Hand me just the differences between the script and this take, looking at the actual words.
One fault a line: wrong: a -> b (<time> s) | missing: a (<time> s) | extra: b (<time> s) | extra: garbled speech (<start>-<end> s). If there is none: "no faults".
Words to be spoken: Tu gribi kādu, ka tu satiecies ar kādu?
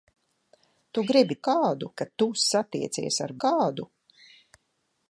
no faults